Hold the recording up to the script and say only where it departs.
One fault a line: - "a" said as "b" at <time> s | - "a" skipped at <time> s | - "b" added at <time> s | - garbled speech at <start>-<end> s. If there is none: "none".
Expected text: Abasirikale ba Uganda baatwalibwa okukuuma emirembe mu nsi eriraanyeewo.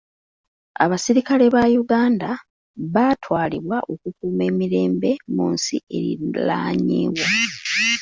none